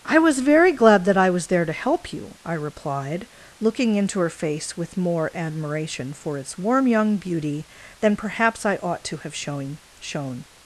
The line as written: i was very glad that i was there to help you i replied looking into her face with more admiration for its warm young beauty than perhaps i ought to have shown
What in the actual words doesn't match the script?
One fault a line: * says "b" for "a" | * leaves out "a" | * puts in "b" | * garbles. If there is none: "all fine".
* puts in "shown"